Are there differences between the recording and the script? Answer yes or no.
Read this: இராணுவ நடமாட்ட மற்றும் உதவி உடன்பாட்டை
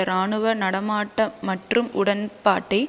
yes